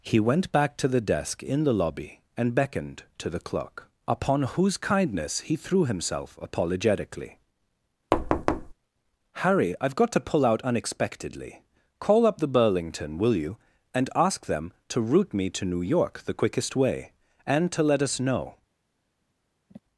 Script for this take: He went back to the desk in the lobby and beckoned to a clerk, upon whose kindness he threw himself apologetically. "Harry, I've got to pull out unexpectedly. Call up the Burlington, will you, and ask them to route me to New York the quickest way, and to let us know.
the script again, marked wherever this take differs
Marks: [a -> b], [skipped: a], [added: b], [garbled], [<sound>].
He went back to the desk in the lobby and beckoned to [a -> the] clerk, upon whose kindness he threw himself apologetically. [thud] "Harry, I've got to pull out unexpectedly. Call up the Burlington, will you, and ask them to route me to New York the quickest way, and to let us know. [sigh]